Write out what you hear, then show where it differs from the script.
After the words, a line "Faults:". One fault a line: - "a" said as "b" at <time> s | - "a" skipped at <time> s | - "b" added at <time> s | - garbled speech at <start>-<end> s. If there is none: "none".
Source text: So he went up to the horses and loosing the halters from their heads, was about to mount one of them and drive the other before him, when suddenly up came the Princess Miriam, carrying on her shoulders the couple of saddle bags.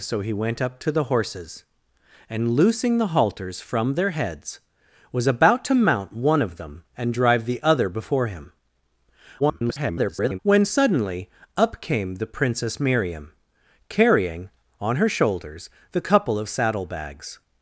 So he went up to the horses and loosing the halters from their heads, was about to mount one of them and drive the other before him, [garbled] when suddenly up came the Princess Miriam, carrying on her shoulders the couple of saddle bags.
Faults:
- garbled speech at 9.4-10.4 s